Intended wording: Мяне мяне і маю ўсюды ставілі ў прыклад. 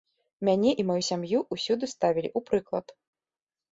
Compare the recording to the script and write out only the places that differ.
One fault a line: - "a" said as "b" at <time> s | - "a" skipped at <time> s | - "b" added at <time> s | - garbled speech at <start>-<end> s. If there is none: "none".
- "мяне" skipped at 0.7 s
- "сям'ю" added at 1.1 s